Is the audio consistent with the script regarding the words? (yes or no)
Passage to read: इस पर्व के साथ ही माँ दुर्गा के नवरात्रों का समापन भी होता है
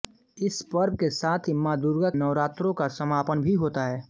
no